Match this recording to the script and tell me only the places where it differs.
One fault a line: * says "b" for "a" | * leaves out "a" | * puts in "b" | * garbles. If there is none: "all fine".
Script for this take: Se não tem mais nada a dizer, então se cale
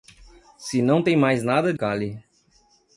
* leaves out "dizer então se"